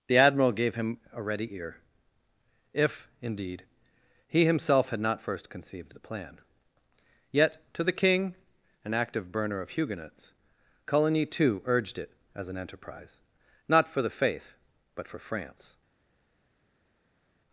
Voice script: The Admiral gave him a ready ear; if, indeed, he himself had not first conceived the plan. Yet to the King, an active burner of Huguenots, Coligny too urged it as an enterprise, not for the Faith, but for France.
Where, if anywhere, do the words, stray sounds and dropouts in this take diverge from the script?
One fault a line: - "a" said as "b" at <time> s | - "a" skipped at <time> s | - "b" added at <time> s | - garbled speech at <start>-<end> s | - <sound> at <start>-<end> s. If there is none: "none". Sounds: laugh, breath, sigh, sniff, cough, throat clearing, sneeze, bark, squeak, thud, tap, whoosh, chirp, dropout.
none